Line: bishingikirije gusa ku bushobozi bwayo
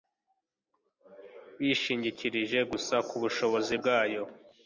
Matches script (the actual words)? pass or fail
pass